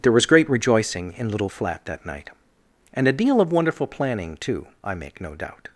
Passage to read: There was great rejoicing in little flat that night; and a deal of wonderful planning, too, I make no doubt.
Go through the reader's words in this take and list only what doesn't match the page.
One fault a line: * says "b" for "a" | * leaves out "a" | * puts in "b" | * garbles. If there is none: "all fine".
all fine